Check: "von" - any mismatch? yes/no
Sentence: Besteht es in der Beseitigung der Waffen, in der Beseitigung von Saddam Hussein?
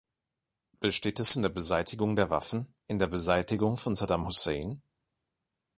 no